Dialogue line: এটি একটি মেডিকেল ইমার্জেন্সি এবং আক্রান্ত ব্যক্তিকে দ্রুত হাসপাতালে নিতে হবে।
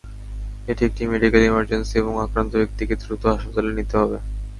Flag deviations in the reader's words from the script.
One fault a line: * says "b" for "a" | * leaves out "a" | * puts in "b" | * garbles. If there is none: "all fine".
all fine